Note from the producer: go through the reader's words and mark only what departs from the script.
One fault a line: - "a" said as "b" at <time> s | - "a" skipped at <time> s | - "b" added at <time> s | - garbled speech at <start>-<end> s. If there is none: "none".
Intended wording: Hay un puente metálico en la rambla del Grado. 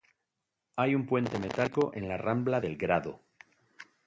none